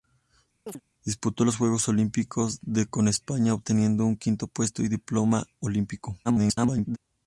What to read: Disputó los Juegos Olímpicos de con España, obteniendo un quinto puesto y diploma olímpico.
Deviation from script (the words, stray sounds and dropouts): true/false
true